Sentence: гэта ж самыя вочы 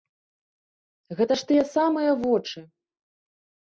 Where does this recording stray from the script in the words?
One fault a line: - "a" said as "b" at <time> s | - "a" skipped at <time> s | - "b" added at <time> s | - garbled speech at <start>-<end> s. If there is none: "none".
- "тыя" added at 1.5 s